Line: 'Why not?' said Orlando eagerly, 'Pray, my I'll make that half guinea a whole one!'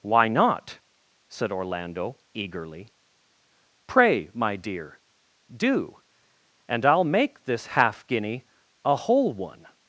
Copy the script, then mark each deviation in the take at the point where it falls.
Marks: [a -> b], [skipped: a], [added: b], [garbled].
'Why not?' said Orlando eagerly, 'Pray, my [added: dear do and] I'll make [that -> this] half guinea a whole one!'